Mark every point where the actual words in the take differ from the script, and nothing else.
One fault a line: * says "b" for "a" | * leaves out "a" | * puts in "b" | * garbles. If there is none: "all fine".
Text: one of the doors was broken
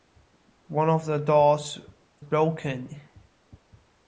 * leaves out "was"